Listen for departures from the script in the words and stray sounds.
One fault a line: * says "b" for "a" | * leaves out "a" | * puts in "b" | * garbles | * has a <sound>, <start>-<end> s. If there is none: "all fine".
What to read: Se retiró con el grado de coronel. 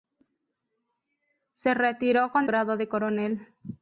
* leaves out "el"